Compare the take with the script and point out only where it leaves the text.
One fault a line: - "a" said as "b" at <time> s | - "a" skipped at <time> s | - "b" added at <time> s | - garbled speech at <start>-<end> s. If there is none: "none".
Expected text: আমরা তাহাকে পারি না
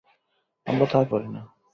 none